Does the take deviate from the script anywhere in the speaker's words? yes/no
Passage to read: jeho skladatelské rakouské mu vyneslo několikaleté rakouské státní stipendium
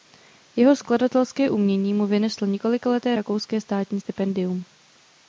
yes